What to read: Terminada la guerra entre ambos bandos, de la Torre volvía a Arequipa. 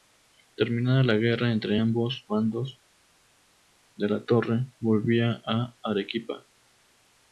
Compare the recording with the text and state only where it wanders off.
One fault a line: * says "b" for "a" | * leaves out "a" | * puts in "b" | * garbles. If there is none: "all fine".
all fine